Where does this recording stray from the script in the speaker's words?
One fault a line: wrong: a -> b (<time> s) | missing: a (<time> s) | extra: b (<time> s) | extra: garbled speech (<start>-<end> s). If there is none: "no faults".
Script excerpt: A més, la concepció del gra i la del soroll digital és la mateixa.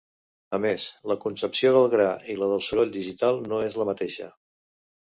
extra: no (3.5 s)